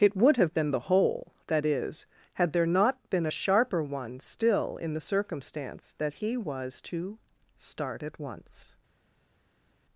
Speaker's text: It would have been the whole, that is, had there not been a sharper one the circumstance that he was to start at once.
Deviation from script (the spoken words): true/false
true